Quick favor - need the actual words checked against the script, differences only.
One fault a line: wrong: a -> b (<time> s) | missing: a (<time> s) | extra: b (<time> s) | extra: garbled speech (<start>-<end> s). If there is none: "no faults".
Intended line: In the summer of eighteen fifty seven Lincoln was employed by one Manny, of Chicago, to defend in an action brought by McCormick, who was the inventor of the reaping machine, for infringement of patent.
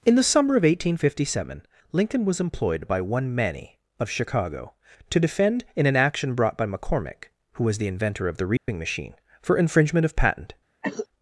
no faults